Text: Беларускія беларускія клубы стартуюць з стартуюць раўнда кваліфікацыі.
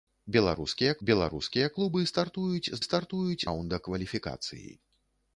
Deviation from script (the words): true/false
false